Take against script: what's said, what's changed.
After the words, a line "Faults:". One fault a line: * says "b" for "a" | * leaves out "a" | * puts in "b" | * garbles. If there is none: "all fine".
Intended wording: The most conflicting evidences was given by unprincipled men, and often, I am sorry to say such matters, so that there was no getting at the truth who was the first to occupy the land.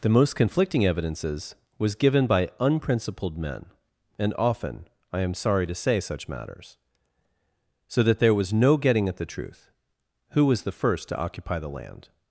The most conflicting evidences was given by unprincipled men, and often, I am sorry to say such matters, so that there was no getting at the truth who was the first to occupy the land.
Faults:
all fine